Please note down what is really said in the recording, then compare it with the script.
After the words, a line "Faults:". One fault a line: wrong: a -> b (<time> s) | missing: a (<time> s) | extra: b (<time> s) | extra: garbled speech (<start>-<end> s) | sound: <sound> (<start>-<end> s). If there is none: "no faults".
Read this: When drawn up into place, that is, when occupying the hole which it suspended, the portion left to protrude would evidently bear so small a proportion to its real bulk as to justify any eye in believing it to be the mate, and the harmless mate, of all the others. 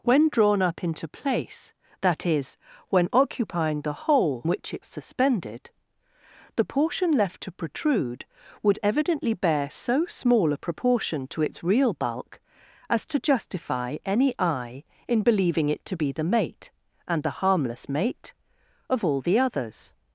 When drawn up into place, that is, when occupying the hole which it suspended, the portion left to protrude would evidently bear so small a proportion to its real bulk as to justify any eye in believing it to be the mate, and the harmless mate, of all the others.
Faults:
no faults